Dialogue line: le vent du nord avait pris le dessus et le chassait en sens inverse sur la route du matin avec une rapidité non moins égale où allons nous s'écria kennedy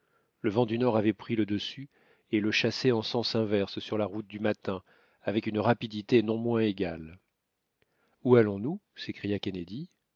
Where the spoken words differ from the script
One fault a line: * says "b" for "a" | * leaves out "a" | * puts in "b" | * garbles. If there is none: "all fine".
all fine